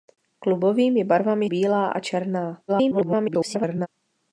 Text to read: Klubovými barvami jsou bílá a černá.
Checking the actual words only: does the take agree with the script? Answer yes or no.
no